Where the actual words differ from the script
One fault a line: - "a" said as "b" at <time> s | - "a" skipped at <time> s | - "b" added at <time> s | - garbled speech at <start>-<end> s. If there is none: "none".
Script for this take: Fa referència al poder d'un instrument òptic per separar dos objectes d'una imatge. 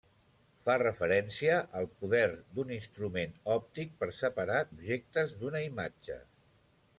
- "dos" skipped at 4.6 s